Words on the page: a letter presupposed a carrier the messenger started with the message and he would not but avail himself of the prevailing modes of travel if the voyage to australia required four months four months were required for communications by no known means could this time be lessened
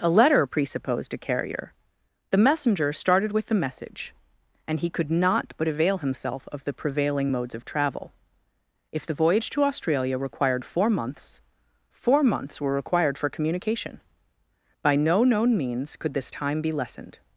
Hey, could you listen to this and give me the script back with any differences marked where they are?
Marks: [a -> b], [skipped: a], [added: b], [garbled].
a letter presupposed a carrier the messenger started with the message and he [would -> could] not but avail himself of the prevailing modes of travel if the voyage to australia required four months four months were required for [communications -> communication] by no known means could this time be lessened